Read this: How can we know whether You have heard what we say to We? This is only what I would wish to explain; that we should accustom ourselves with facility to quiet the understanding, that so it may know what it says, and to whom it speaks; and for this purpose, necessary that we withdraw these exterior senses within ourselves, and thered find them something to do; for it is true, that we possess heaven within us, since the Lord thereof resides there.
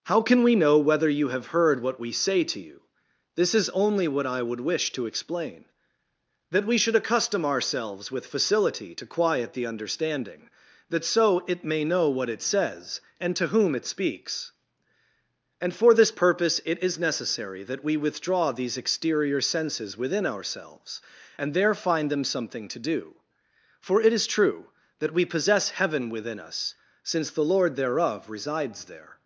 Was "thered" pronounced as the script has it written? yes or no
no